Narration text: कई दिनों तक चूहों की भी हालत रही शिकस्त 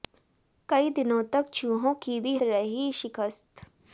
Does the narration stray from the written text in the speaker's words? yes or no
yes